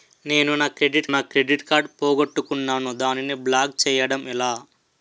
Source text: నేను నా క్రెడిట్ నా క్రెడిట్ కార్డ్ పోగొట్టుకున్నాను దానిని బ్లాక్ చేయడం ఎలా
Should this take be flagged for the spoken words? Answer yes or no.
no